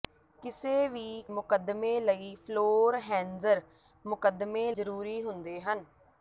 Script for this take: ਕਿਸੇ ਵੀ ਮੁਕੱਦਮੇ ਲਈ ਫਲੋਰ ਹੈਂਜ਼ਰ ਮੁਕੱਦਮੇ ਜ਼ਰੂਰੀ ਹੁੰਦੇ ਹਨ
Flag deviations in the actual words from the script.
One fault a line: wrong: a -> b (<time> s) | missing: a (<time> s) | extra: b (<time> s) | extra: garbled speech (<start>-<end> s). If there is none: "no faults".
no faults